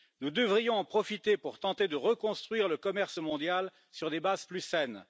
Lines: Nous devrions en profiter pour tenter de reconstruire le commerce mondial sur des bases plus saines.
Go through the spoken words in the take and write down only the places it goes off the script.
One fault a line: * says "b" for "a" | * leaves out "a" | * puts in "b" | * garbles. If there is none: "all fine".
all fine